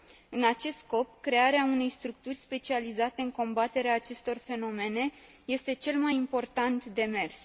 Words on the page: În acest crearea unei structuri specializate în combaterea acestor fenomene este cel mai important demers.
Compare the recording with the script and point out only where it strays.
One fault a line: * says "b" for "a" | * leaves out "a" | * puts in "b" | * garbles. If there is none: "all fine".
* puts in "scop"